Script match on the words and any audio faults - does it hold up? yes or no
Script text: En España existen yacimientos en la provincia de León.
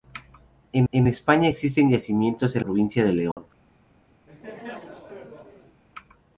no